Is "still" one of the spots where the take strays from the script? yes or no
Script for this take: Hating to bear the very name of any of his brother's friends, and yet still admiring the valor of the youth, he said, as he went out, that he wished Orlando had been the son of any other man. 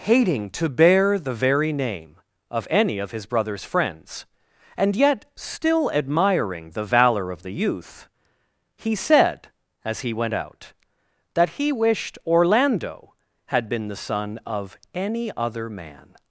no